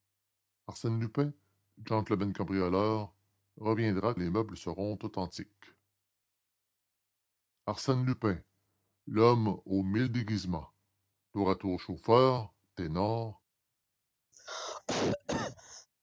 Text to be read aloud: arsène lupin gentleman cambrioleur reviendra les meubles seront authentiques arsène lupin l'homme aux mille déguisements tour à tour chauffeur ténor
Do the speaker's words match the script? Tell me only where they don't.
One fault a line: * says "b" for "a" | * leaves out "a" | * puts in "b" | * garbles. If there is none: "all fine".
all fine